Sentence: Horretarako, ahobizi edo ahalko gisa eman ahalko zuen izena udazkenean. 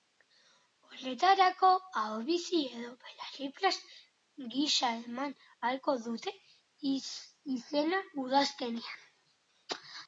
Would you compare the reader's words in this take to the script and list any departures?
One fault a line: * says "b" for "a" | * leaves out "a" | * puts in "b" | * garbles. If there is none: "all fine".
* says "belarriprest" for "ahalko"
* says "dute" for "zuen"